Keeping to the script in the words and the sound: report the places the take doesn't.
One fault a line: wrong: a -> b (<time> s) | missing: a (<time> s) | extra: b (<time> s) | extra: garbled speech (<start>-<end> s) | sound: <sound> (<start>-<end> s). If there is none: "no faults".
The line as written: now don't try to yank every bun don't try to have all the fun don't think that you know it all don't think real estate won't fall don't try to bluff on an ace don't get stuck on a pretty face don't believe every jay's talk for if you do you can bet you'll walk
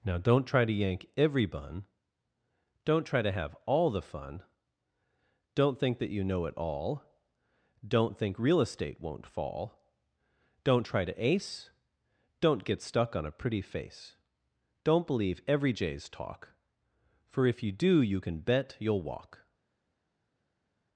missing: bluff on an (11.2 s)